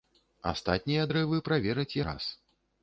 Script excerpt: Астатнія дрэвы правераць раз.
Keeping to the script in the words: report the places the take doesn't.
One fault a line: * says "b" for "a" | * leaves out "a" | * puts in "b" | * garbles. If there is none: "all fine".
all fine